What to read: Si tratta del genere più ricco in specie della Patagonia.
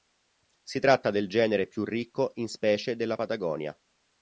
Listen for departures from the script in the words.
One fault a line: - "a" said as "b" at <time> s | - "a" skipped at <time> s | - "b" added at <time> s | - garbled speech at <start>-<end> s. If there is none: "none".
none